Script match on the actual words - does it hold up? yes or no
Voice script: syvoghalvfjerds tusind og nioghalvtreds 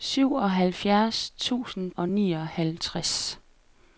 yes